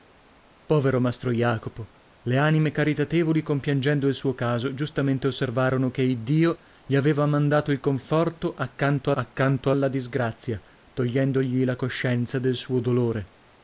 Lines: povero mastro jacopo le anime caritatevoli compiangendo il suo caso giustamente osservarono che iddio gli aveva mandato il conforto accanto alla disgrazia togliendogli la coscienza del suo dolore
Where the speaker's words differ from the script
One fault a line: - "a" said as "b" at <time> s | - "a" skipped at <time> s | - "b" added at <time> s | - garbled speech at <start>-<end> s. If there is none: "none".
- "accanto" added at 9.1 s